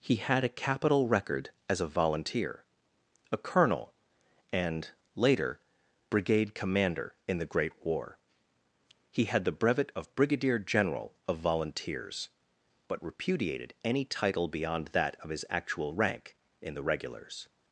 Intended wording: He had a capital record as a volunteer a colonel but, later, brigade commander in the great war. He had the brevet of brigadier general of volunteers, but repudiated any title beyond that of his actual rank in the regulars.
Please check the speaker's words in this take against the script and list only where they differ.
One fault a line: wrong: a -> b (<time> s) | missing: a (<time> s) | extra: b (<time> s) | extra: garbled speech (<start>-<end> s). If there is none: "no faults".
wrong: but -> and (4.5 s)